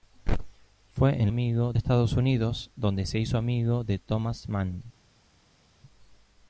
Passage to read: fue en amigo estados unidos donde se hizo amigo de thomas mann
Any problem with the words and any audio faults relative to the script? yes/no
no